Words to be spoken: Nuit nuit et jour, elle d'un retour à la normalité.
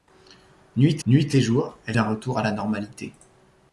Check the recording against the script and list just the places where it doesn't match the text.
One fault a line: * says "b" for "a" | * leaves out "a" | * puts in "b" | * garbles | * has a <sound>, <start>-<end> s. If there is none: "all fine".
all fine